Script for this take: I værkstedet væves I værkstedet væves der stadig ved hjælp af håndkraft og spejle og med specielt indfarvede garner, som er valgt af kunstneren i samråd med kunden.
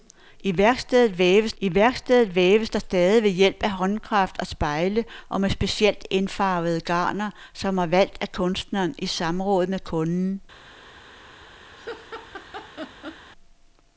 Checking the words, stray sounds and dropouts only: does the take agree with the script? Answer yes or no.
no